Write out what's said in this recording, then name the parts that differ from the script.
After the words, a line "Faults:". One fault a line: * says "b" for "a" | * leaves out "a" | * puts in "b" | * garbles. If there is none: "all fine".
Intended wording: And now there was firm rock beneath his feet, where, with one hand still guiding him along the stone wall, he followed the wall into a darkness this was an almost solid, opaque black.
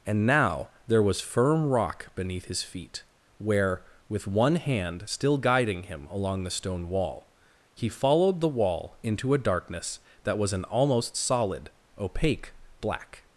And now there was firm rock beneath his feet, where, with one hand still guiding him along the stone wall, he followed the wall into a darkness that was an almost solid, opaque black.
Faults:
* says "that" for "this"